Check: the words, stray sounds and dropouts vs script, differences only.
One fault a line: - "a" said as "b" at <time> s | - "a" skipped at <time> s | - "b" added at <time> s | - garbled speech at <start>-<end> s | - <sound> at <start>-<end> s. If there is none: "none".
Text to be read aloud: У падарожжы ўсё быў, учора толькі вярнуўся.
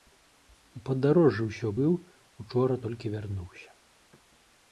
none